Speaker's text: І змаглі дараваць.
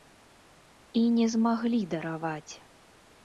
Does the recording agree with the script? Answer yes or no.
no